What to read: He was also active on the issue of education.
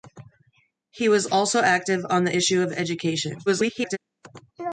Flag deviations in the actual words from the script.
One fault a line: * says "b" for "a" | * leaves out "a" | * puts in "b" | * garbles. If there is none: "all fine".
* garbles